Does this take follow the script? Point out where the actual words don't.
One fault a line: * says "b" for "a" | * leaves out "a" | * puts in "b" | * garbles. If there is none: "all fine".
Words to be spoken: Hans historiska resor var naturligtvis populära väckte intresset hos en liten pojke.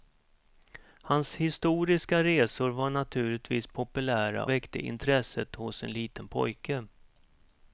all fine